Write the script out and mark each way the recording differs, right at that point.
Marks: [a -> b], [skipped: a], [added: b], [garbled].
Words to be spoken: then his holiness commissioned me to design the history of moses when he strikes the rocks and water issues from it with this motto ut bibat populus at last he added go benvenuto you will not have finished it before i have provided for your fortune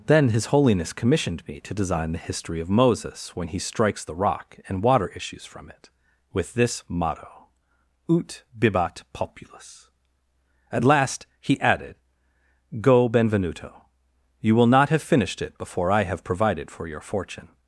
then his holiness commissioned me to design the history of moses when he strikes the [rocks -> rock] and water issues from it with this motto ut bibat populus at last he added go benvenuto you will not have finished it before i have provided for your fortune